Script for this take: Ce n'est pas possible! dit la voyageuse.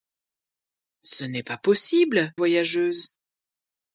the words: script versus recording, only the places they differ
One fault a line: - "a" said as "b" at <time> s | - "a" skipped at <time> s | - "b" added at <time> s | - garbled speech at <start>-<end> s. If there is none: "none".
- "dit la" skipped at 2.3 s